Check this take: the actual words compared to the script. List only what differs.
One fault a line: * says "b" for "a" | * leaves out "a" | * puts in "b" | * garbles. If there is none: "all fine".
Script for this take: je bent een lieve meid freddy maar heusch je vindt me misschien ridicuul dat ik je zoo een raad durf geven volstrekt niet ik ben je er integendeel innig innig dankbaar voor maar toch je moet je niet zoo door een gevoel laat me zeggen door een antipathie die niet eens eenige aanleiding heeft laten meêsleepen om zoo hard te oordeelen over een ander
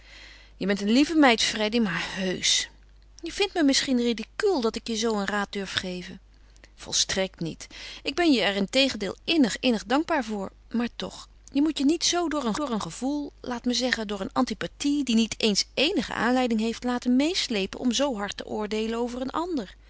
* puts in "door een"